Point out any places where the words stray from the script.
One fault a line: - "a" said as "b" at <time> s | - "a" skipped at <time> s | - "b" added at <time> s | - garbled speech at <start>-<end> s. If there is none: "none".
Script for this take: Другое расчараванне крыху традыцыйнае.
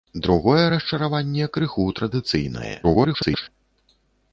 - garbled speech at 2.8-3.5 s